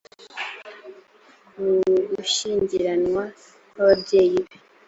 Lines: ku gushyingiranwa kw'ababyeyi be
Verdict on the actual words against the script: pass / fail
pass